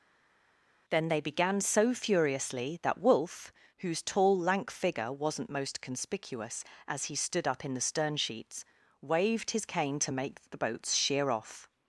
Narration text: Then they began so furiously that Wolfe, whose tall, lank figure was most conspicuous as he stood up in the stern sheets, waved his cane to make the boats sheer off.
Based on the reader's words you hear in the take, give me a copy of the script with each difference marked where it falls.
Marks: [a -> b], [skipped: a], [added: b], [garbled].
Then they began so furiously that Wolfe, whose tall, lank figure [was -> wasn't] most conspicuous as he stood up in the stern sheets, waved his cane to make the boats sheer off.